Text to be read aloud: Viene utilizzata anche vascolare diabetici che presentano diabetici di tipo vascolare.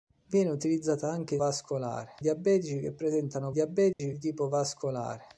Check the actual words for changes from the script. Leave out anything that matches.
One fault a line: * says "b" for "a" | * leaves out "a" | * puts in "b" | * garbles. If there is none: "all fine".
all fine